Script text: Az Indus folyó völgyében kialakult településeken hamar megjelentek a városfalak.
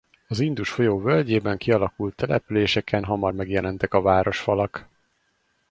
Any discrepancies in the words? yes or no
no